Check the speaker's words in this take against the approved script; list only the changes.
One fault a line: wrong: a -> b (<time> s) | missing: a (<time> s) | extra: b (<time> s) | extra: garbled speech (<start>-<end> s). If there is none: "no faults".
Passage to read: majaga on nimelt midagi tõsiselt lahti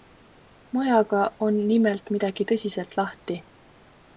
no faults